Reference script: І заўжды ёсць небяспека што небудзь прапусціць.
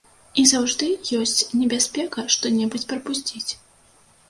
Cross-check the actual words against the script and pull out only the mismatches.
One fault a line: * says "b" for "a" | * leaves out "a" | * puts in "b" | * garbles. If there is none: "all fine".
all fine